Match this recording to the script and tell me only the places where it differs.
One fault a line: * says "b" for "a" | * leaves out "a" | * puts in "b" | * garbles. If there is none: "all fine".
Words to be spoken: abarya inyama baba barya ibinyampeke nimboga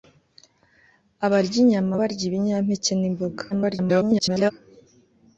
* leaves out "baba"
* garbles